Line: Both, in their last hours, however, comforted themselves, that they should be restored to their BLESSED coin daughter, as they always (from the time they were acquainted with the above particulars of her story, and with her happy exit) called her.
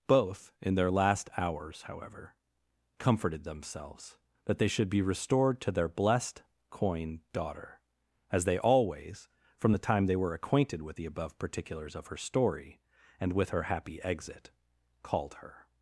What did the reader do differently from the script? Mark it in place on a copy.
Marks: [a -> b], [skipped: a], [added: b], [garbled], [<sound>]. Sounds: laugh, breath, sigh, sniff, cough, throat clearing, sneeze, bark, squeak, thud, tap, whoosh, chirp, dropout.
Both, in their last hours, however, comforted themselves, that they should be restored to their BLESSED coin daughter, as they always (from the time they were acquainted with the above particulars of her story, and with her happy exit) called her.